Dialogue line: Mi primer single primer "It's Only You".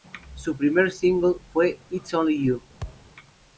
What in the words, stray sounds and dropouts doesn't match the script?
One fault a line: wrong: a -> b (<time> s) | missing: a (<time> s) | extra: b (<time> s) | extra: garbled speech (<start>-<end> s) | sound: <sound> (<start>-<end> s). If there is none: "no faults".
wrong: Mi -> Su (0.3 s)
wrong: primer -> fue (1.5 s)
sound: thud (2.8-3.1 s)